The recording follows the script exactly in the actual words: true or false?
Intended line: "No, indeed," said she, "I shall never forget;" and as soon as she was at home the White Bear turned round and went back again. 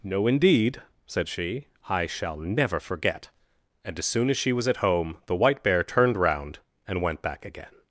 true